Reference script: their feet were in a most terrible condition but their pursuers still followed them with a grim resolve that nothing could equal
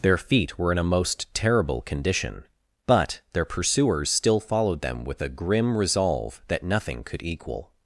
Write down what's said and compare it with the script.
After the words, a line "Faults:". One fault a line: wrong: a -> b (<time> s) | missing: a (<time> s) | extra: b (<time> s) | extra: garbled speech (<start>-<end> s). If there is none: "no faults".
their feet were in a most terrible condition but their pursuers still followed them with a grim resolve that nothing could equal
Faults:
no faults